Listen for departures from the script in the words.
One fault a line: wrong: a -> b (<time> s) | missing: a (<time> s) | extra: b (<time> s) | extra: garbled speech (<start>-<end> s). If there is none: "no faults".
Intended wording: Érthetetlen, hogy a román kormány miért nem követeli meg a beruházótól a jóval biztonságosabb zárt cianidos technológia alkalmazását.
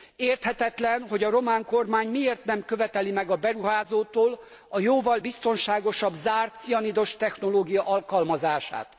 no faults